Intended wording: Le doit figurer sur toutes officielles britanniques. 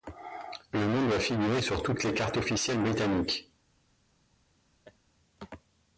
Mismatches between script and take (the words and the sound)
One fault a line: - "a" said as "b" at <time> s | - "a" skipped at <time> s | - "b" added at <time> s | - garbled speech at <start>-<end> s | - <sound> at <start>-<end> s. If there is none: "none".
- "nom" added at 0.8 s
- "les cartes" added at 2.0 s
- laugh at 4.8-5.0 s